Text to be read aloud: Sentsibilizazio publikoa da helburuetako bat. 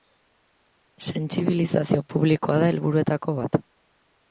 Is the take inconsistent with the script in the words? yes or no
no